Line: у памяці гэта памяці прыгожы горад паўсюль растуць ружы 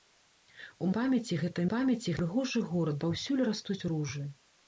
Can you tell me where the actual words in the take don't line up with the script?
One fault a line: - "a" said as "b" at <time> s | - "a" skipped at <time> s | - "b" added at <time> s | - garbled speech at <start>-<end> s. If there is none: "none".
none